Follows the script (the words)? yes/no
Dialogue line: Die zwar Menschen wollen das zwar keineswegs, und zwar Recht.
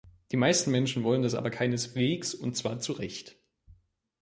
no